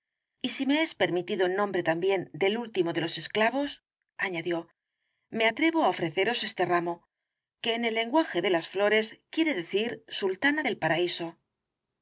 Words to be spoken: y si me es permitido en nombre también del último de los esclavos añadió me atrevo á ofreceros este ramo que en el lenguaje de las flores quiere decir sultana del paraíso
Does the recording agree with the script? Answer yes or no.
yes